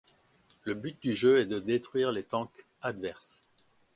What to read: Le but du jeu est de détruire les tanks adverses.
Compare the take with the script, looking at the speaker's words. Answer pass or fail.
pass